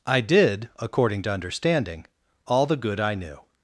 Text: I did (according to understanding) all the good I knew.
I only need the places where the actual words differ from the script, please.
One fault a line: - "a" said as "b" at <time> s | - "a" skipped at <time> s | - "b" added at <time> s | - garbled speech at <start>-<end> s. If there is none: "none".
none